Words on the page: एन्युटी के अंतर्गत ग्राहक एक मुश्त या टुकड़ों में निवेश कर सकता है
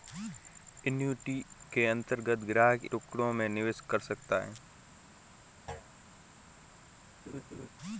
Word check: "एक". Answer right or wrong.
wrong